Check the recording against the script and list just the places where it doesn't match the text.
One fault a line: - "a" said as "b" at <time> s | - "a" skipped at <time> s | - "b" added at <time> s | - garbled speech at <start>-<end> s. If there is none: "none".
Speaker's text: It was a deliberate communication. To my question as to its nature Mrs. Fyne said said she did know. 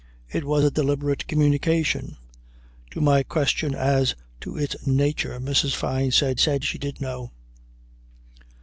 none